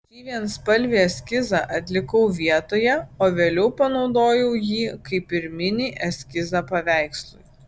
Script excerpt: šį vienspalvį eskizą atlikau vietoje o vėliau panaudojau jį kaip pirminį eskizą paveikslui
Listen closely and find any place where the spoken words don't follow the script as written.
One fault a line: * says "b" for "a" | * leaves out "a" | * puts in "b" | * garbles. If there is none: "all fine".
all fine